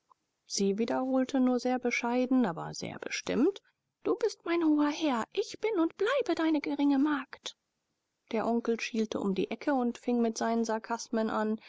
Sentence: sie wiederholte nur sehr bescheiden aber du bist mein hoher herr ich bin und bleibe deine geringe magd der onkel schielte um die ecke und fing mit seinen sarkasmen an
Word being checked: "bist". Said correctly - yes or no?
yes